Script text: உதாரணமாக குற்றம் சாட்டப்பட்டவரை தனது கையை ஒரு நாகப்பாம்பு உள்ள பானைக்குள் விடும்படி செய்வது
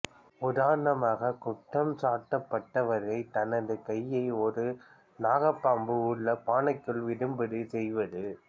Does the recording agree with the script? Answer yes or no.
yes